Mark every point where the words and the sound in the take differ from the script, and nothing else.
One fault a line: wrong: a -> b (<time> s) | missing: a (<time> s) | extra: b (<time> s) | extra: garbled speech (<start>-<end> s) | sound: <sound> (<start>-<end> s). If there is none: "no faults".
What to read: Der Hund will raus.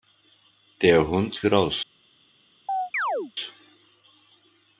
missing: will (1.4 s)
sound: chirp (2.7-3.3 s)